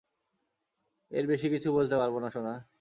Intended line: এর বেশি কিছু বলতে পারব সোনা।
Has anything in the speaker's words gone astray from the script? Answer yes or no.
yes